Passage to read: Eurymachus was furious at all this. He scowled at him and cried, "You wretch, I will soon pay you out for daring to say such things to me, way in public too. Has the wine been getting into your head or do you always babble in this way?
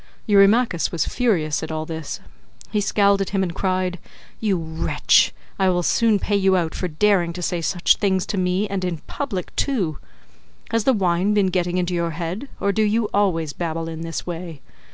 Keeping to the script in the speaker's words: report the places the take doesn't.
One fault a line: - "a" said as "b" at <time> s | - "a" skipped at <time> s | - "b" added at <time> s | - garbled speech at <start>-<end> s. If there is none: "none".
- "way" said as "and" at 8.7 s